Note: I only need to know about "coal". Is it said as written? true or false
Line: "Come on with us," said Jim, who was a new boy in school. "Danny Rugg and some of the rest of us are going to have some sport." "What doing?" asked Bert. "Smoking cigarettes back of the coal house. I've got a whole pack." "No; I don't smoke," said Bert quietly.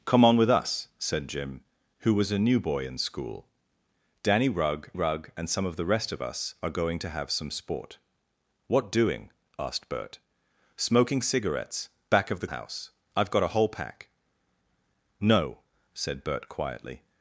false